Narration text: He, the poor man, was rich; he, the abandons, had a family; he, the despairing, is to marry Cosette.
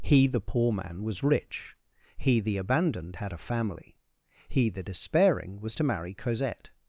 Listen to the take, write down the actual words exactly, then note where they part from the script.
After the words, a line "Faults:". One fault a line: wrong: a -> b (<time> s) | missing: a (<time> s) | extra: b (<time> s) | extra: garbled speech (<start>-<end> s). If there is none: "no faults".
He, the poor man, was rich; he, the abandoned, had a family; he, the despairing, was to marry Cosette.
Faults:
wrong: abandons -> abandoned (2.6 s)
wrong: is -> was (5.6 s)